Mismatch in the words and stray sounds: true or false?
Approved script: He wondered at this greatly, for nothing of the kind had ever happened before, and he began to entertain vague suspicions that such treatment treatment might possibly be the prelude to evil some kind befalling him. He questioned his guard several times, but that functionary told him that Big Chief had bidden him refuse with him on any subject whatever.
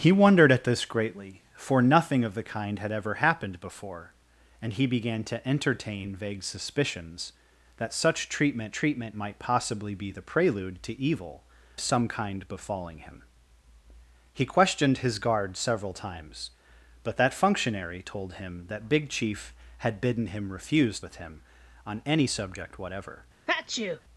true